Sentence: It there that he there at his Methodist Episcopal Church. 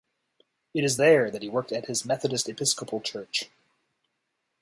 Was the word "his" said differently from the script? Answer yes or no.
no